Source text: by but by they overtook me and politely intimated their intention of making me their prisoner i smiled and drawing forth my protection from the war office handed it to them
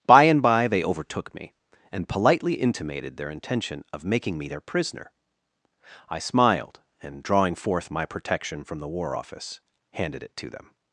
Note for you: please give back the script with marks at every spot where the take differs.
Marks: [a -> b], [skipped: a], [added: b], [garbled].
by [but -> and] by they overtook me and politely intimated their intention of making me their prisoner i smiled and drawing forth my protection from the war office handed it to them